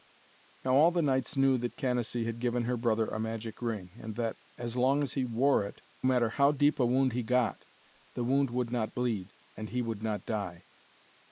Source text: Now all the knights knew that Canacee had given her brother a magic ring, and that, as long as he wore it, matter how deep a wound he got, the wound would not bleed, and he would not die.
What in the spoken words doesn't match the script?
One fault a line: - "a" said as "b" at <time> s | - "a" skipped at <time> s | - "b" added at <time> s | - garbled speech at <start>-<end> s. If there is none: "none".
none